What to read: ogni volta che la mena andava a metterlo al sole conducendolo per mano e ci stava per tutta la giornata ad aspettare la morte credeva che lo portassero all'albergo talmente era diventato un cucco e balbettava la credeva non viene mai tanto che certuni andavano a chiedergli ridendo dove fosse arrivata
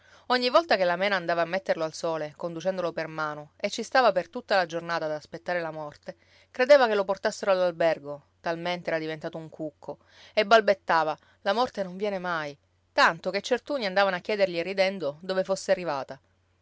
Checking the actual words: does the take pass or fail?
fail